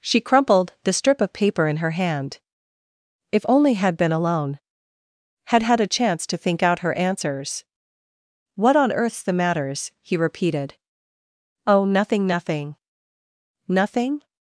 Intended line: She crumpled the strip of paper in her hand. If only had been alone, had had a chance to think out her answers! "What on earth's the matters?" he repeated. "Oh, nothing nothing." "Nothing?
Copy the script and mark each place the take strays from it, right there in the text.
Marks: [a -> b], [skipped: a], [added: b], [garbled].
She crumpled the strip of paper in her hand. If only had been alone, had had a chance to think out her answers! "What on earth's the matters?" he repeated. "Oh, nothing nothing." "Nothing?